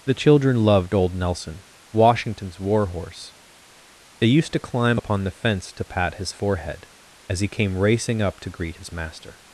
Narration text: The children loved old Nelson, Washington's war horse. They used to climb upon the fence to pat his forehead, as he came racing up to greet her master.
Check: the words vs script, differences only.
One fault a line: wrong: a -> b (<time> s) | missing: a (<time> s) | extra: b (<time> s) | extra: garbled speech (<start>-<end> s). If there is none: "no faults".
wrong: her -> his (8.7 s)